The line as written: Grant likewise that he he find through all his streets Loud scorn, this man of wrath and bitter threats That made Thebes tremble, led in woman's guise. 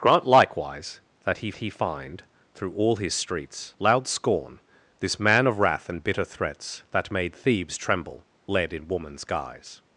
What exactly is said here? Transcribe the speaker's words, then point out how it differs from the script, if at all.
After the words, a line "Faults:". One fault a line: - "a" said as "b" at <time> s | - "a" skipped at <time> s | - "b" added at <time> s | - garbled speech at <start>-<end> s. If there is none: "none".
Grant likewise that he he find through all his streets Loud scorn, this man of wrath and bitter threats That made Thebes tremble, led in woman's guise.
Faults:
none